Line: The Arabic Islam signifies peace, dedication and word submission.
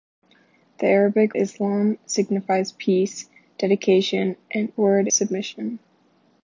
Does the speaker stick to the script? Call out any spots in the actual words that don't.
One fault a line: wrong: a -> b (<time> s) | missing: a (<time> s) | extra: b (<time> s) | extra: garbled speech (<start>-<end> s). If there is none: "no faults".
no faults